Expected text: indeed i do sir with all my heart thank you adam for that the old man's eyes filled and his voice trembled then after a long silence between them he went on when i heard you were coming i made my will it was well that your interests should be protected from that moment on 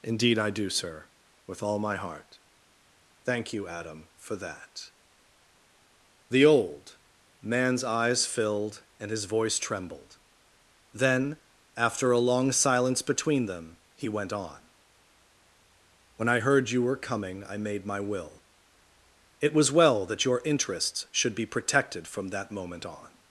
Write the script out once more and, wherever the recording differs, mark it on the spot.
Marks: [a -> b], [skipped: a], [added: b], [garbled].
indeed i do sir with all my heart thank you adam for that the old man's eyes filled and his voice trembled then after a long silence between them he went on when i heard you were coming i made my will it was well that your interests should be protected from that moment on